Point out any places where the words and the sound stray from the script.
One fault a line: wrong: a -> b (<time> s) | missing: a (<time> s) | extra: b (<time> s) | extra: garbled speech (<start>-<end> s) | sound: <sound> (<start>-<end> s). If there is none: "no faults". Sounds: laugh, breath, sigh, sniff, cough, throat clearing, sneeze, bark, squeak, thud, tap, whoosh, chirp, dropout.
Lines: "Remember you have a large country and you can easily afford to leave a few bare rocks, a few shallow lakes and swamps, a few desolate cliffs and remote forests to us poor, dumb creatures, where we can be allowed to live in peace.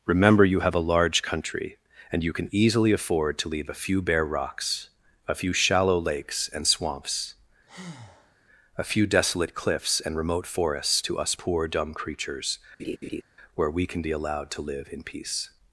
sound: breath (7.7-8.4 s)
sound: laugh (12.8-13.2 s)